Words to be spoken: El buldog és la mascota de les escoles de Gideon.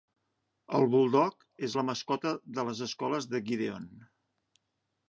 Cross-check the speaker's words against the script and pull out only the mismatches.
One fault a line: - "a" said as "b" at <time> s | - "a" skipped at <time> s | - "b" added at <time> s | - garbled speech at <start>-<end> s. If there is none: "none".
none